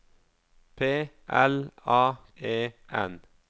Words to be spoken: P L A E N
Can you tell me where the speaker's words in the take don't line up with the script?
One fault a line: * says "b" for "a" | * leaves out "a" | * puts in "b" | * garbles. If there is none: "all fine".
all fine